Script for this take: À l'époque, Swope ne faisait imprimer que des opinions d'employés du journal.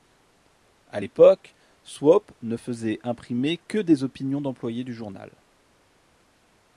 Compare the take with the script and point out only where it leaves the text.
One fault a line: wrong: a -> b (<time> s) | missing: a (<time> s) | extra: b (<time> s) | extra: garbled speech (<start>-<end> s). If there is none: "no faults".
no faults